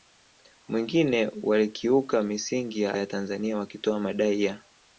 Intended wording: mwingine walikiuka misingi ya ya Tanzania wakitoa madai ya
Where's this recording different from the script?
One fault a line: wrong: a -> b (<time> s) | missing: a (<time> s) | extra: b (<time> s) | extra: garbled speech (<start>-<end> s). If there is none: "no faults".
no faults